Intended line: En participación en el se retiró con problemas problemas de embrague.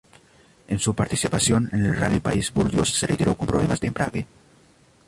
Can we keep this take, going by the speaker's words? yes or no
no